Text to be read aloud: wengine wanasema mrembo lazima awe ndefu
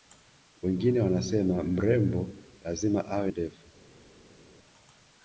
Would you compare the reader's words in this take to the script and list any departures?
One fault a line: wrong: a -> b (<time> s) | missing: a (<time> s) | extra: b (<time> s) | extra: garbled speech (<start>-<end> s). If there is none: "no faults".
no faults